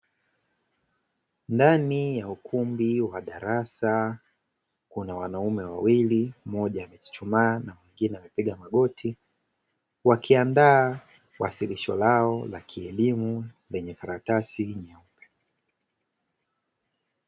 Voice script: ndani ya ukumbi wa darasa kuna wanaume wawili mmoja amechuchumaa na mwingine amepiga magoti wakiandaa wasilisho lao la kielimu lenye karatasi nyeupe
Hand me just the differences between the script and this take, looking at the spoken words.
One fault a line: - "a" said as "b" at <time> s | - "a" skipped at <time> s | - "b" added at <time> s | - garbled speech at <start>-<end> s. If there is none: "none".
none